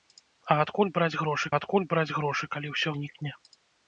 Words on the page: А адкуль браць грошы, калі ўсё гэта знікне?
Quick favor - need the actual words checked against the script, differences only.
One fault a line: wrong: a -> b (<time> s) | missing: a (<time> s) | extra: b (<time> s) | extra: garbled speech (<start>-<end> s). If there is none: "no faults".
extra: адкуль браць грошы (1.6 s)
missing: гэта (3.0 s)